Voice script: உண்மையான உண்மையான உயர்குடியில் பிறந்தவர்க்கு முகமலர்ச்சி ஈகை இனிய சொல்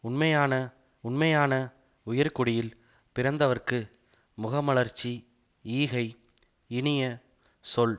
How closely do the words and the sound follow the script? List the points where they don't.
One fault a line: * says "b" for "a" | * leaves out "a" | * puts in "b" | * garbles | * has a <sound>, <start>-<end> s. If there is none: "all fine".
all fine